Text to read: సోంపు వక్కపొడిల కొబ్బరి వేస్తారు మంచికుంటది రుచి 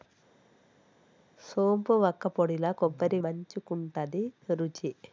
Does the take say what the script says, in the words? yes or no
no